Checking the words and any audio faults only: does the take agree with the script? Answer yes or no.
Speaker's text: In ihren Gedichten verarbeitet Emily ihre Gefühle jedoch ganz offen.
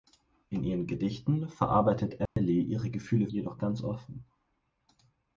no